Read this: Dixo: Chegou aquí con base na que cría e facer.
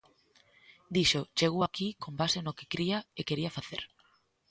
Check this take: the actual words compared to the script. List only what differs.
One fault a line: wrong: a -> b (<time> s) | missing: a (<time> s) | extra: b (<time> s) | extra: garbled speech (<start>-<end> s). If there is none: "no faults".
wrong: na -> no (2.4 s)
extra: quería (3.3 s)